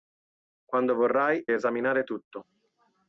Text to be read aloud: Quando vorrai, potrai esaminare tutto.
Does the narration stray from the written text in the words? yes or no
yes